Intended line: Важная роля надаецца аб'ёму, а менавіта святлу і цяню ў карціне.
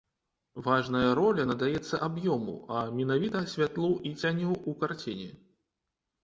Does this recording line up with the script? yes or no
yes